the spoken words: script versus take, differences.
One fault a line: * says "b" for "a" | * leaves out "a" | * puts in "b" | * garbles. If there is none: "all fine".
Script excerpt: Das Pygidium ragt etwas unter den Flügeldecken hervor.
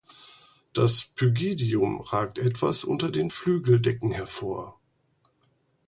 all fine